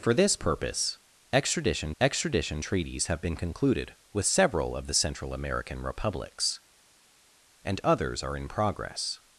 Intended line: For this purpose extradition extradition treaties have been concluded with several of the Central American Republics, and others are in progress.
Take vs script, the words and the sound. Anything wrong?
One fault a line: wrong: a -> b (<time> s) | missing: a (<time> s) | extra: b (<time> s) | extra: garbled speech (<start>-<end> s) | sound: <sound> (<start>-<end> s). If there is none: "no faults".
no faults